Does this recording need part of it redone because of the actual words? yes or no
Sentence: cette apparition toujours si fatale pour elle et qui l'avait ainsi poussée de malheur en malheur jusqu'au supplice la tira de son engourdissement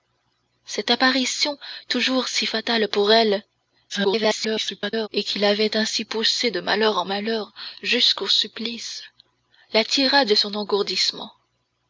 yes